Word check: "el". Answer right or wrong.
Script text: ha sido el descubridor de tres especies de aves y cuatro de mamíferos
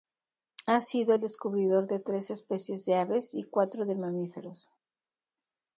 right